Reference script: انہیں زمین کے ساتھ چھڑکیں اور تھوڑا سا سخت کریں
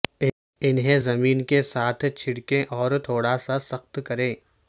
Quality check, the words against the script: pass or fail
pass